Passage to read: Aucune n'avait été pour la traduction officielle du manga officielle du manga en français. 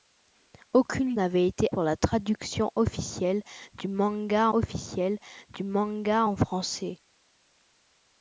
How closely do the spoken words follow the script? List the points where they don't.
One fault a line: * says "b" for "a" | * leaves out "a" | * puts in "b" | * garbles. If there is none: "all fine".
all fine